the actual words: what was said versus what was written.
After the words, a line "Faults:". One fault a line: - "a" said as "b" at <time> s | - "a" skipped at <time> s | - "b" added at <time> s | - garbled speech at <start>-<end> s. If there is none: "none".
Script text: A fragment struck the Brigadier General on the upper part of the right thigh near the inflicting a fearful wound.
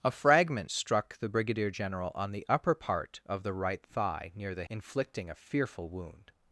A fragment struck the Brigadier General on the upper part of the right thigh near the inflicting a fearful wound.
Faults:
none